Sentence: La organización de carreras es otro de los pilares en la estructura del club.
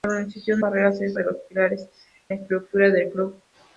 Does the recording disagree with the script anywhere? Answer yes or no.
yes